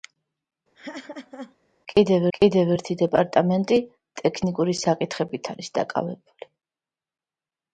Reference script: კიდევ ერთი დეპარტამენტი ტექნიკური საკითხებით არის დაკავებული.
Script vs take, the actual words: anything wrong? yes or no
yes